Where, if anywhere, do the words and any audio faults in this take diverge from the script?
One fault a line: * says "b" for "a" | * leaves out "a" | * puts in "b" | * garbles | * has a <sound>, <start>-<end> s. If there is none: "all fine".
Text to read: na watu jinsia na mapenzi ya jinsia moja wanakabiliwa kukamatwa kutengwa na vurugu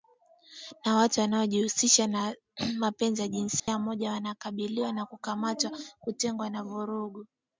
* says "wanaojihusisha" for "jinsia"
* has a dropout, 3.6-3.7 s
* puts in "na"